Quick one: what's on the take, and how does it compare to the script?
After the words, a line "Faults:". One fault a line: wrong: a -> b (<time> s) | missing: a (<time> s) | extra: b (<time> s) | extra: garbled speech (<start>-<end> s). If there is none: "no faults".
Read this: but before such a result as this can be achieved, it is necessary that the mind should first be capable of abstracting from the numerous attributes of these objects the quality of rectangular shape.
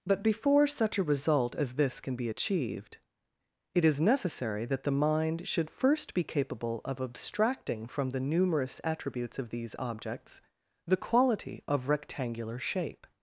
but before such a result as this can be achieved, it is necessary that the mind should first be capable of abstracting from the numerous attributes of these objects the quality of rectangular shape.
Faults:
no faults